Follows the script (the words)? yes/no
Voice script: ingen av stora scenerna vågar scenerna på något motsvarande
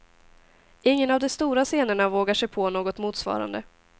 no